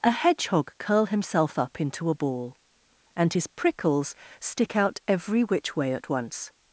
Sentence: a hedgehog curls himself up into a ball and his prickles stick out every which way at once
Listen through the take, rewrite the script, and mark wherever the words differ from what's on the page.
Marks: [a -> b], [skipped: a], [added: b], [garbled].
a hedgehog [curls -> curl] himself up into a ball and his prickles stick out every which way at once